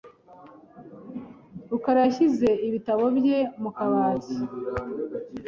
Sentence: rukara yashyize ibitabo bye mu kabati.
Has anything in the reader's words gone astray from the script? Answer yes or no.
no